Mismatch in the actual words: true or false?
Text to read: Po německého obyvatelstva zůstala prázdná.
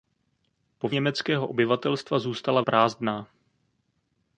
false